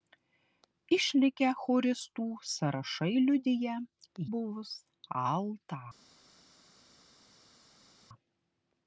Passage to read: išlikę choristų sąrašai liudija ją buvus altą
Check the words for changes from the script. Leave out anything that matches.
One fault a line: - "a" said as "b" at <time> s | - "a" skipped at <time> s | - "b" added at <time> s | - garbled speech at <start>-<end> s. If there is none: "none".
- "ją" skipped at 3.8 s